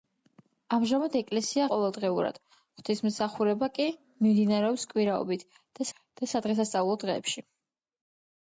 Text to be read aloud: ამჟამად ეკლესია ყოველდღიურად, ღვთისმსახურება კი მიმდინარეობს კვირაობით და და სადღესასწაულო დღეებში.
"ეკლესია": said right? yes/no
yes